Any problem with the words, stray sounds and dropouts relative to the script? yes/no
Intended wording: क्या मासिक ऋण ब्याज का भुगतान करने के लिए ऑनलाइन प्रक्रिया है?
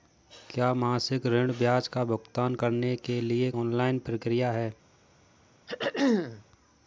yes